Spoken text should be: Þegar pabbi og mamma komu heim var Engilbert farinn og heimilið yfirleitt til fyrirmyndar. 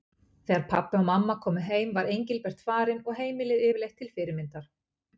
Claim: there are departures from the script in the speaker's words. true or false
false